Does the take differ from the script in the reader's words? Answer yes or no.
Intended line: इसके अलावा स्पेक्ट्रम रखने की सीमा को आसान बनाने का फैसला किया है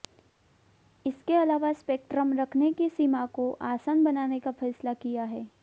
no